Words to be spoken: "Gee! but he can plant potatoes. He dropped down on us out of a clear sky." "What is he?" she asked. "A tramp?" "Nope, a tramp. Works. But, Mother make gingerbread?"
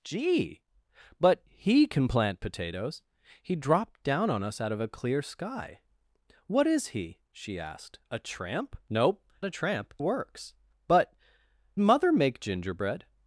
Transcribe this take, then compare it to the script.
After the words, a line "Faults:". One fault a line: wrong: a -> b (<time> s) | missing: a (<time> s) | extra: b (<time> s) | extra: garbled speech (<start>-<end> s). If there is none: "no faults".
"Gee! but he can plant potatoes. He dropped down on us out of a clear sky." "What is he?" she asked. "A tramp?" "Nope, a tramp. Works. But, Mother make gingerbread?"
Faults:
no faults